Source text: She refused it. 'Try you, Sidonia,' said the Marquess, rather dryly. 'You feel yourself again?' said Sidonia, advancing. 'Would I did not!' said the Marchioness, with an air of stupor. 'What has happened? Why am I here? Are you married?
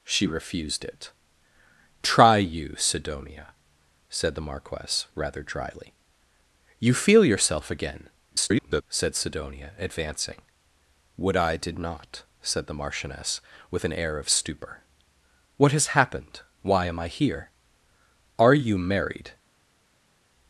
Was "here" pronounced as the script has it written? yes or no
yes